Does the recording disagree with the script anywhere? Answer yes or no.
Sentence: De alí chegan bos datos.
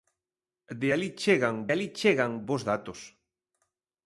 yes